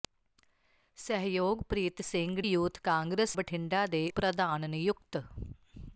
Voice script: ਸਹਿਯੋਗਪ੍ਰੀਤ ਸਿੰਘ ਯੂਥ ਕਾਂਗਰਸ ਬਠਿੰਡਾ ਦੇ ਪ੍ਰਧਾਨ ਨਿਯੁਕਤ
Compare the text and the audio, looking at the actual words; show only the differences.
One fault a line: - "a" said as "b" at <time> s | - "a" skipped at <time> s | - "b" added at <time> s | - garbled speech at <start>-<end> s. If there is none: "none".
none